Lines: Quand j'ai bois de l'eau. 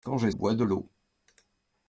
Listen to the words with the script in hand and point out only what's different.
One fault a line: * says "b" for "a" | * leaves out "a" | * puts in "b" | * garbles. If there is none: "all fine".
all fine